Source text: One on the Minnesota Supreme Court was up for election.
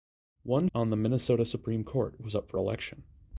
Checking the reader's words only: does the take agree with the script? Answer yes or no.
yes